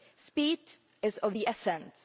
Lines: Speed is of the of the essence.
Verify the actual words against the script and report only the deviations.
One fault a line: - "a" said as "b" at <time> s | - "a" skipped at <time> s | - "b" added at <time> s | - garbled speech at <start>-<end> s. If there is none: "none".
- "of the" skipped at 1.5 s